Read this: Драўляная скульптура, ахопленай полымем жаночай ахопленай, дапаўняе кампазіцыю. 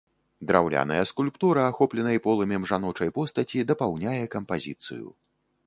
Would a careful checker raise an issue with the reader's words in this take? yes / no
yes